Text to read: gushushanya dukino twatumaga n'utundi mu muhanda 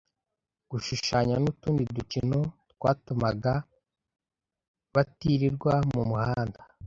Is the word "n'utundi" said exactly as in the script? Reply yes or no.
no